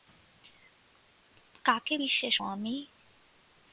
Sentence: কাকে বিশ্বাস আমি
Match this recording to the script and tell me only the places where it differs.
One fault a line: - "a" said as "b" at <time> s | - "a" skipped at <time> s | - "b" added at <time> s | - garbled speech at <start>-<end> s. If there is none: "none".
none